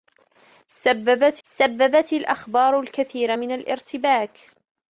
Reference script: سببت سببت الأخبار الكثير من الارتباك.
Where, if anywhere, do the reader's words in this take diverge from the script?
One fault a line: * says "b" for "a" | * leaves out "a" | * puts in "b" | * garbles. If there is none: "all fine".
all fine